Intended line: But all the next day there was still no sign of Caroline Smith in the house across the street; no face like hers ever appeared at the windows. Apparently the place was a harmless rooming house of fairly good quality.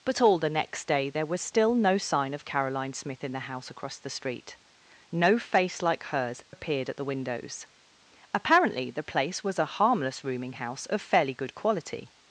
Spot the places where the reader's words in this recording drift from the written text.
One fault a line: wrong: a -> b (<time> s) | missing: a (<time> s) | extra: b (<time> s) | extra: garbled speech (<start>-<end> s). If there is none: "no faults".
missing: ever (6.4 s)